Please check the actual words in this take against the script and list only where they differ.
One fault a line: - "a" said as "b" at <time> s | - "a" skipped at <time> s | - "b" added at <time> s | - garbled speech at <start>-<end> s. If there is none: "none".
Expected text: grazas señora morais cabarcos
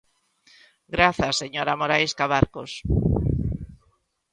none